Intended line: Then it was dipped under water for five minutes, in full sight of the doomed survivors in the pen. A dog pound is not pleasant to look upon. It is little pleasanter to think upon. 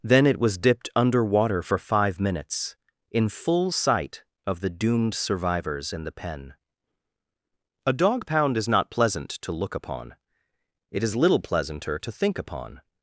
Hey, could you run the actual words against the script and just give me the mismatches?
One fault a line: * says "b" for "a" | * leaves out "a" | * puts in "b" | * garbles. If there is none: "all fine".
all fine